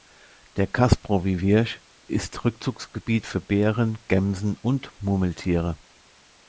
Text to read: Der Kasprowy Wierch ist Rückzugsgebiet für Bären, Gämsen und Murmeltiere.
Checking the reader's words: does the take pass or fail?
pass